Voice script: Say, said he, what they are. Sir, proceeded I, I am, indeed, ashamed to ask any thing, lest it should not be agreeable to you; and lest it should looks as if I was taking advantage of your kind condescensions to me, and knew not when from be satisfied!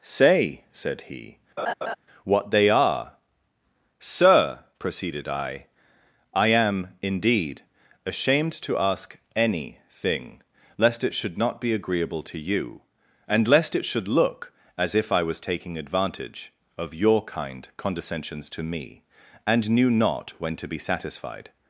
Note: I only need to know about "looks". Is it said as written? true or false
false